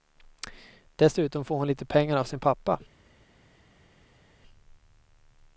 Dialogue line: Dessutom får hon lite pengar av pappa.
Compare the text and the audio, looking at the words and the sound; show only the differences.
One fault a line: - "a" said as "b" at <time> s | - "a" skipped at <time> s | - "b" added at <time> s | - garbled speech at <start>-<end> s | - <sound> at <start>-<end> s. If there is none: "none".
- "sin" added at 2.2 s